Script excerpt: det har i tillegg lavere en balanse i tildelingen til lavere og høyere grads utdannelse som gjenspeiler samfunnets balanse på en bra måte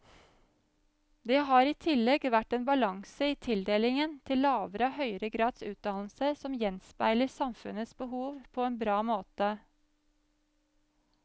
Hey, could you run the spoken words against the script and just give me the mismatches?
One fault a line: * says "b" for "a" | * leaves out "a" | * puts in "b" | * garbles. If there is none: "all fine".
* says "vært" for "lavere"
* says "behov" for "balanse"